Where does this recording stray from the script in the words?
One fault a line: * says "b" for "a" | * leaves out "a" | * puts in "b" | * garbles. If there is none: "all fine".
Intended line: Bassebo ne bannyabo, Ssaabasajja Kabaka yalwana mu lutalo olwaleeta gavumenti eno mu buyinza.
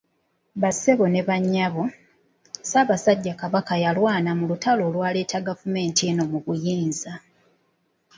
all fine